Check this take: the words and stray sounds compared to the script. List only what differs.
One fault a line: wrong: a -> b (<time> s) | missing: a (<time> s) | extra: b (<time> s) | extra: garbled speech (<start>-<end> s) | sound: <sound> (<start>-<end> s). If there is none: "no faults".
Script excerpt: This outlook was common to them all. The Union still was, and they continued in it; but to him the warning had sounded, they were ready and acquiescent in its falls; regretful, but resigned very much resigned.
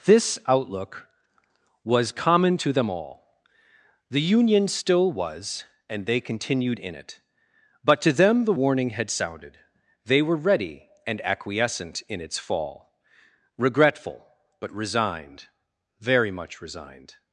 wrong: him -> them (8.1 s)
wrong: falls -> fall (12.4 s)